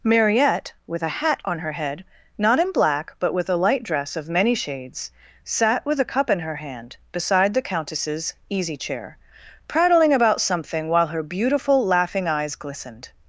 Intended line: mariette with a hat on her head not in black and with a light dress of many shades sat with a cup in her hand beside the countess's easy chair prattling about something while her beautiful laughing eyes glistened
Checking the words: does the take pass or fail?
fail